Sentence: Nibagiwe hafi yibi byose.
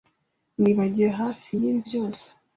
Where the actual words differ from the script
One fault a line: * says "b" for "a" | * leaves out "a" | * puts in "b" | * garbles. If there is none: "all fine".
all fine